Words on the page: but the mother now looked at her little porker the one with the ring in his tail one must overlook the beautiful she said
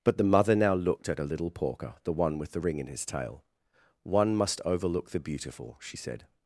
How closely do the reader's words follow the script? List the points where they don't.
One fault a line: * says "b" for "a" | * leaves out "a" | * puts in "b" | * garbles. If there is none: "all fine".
all fine